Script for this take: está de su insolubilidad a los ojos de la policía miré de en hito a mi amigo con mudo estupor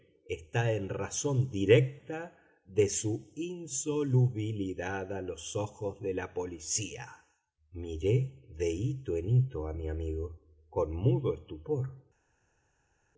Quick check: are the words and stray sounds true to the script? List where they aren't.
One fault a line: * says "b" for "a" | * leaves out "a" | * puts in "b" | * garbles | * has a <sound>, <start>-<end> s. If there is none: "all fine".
* puts in "en razón directa"
* puts in "hito"